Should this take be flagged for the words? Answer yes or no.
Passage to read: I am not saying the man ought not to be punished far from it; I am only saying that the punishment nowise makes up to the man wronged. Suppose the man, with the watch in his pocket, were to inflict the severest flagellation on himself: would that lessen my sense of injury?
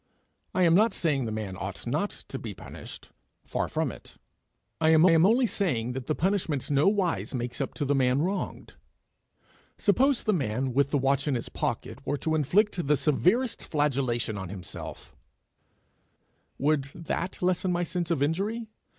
yes